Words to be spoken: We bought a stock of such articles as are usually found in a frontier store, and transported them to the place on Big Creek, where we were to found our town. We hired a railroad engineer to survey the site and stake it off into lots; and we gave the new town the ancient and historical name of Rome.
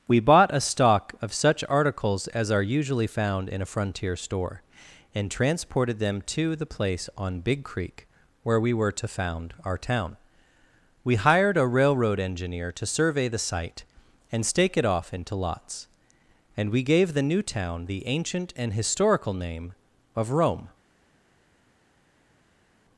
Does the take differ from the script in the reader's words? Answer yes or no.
no